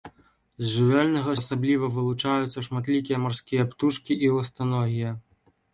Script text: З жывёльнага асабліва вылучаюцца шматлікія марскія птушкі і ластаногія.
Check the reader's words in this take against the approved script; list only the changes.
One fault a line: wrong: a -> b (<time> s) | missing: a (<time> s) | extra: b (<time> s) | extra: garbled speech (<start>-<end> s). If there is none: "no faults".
no faults